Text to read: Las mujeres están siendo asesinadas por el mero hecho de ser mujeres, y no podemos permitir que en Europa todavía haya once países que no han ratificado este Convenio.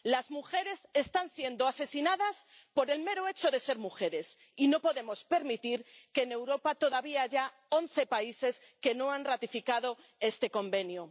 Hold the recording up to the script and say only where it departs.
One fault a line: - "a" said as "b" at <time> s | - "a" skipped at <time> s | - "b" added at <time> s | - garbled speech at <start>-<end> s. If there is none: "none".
none